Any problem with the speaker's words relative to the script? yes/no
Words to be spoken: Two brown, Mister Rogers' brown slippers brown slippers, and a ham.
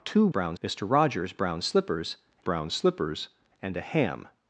no